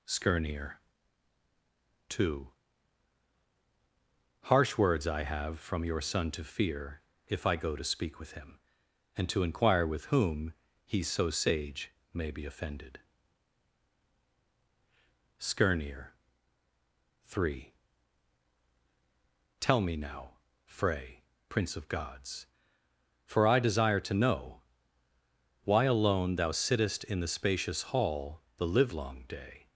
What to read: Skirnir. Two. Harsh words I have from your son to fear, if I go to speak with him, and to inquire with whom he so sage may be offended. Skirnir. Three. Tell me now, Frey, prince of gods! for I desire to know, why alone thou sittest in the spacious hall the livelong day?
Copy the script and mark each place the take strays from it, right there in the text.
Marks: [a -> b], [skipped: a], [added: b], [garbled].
Skirnir. Two. Harsh words I have from your son to fear, if I go to speak with him, and to inquire with whom he so sage may be offended. Skirnir. Three. Tell me now, Frey, prince of gods! for I desire to know, why alone thou sittest in the spacious hall the livelong day?